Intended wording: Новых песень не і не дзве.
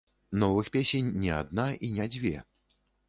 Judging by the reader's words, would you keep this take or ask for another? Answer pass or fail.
fail